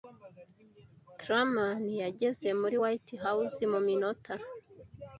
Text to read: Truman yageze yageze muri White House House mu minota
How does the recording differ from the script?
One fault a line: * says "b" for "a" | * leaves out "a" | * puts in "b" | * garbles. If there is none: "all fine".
* leaves out "yageze"
* leaves out "House"